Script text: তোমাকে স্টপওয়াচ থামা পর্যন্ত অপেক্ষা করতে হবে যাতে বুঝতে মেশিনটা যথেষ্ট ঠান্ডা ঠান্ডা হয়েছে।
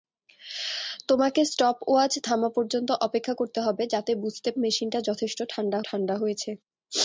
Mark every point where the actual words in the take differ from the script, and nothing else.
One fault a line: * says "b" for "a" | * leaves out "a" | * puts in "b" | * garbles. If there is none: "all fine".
all fine